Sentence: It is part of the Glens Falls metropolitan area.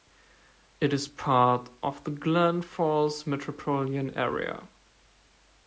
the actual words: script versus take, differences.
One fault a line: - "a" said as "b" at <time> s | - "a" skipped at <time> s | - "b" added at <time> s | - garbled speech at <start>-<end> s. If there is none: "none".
none